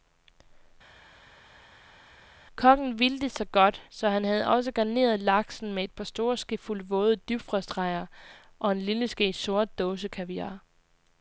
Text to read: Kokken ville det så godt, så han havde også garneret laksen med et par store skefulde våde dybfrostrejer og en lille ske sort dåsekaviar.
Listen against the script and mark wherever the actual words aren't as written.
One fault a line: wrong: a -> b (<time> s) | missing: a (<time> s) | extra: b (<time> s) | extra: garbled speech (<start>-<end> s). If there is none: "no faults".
no faults